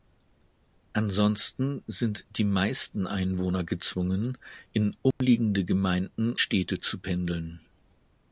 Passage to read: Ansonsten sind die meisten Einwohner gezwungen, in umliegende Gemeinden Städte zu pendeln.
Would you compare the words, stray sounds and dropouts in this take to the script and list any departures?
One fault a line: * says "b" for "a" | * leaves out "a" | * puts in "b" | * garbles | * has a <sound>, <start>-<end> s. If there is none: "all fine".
* has a dropout, 5.1-5.2 s